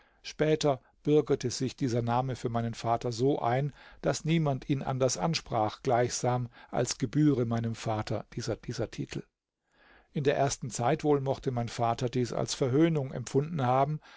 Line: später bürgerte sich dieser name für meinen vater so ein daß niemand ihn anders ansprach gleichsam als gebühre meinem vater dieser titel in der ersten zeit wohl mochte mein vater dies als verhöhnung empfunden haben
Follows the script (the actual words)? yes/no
no